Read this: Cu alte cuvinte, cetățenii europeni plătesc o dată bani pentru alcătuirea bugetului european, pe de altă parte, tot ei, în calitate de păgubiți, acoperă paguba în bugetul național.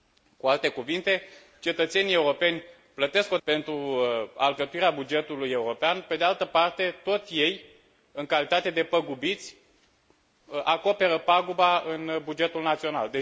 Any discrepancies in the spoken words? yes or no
yes